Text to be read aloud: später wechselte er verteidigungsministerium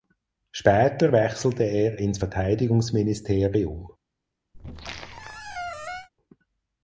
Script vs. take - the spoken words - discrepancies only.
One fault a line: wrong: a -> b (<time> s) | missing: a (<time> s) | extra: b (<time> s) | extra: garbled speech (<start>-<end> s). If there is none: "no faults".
extra: ins (2.0 s)